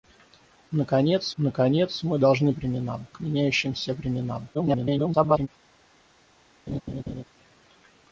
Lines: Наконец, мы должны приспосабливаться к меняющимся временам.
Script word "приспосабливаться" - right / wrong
wrong